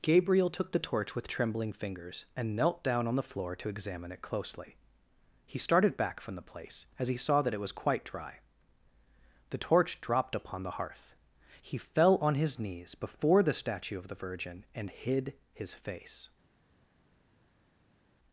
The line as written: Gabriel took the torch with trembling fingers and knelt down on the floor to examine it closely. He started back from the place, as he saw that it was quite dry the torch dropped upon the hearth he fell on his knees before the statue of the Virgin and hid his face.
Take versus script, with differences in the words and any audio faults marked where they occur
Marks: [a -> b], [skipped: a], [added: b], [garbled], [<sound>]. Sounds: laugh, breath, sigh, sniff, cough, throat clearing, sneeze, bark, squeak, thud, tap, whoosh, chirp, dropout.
Gabriel took the torch with trembling fingers and knelt down on the floor to examine it closely. He started back from the place, as he saw that it was quite dry the torch dropped upon the hearth he fell on his knees before the statue of the Virgin and hid his face.